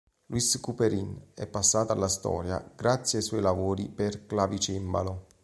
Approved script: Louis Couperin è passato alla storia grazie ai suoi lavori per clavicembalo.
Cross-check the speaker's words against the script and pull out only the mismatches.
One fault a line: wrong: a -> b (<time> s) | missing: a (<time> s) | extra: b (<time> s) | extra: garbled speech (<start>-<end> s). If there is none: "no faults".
no faults